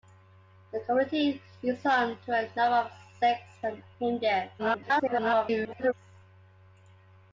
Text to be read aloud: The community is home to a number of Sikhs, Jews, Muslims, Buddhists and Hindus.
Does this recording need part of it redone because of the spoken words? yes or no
yes